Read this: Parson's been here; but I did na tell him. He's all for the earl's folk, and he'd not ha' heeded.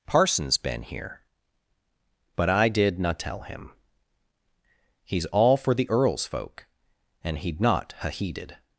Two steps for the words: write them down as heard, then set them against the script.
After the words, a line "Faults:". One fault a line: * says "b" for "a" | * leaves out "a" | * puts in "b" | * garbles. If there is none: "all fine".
Parson's been here; but I did na tell him. He's all for the earl's folk, and he'd not ha' heeded.
Faults:
all fine